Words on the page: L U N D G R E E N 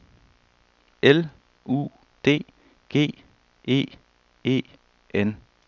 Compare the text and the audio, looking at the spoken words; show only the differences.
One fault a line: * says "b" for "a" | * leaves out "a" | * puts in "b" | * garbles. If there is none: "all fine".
* leaves out "N"
* leaves out "R"